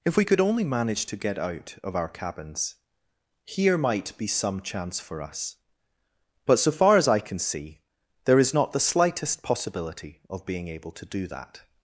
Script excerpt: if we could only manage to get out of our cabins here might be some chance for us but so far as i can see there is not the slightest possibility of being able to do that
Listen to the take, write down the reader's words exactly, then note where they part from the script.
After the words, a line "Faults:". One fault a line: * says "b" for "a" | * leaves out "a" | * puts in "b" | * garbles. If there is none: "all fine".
if we could only manage to get out of our cabins here might be some chance for us but so far as i can see there is not the slightest possibility of being able to do that
Faults:
all fine